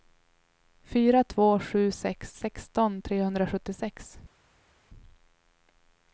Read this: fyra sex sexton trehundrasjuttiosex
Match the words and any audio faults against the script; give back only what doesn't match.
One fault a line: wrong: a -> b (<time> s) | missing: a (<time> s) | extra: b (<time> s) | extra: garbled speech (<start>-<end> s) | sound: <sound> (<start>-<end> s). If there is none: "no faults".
extra: två sju (1.2 s)